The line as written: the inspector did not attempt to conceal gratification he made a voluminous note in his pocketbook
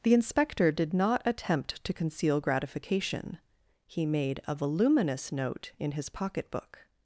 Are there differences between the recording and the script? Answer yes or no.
no